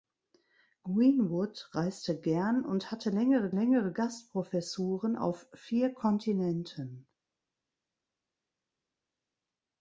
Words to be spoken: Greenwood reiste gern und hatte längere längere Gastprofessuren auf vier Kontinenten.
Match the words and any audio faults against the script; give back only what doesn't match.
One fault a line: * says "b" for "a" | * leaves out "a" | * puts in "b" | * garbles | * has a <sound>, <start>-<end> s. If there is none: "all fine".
all fine